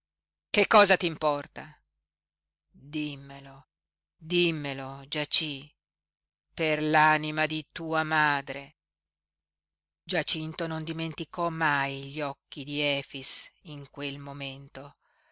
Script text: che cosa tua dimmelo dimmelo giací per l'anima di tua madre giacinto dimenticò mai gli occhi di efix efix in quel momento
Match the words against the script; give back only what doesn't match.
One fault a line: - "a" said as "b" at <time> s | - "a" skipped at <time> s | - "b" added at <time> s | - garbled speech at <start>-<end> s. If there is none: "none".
- "tua" said as "t'importa" at 1.0 s
- "non" added at 10.7 s
- "efix" skipped at 13.5 s